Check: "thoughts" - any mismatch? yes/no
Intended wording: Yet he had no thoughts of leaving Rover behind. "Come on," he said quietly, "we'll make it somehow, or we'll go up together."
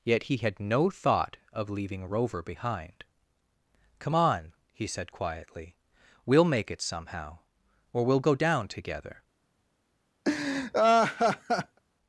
yes